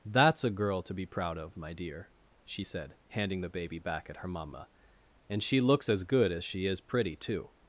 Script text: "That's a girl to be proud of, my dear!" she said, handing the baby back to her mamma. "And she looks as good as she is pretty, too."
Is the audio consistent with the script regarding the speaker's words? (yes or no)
no